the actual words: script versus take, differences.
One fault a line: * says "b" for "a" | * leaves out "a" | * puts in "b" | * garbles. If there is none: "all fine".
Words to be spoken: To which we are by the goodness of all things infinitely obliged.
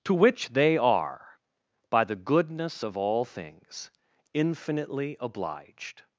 * says "they" for "we"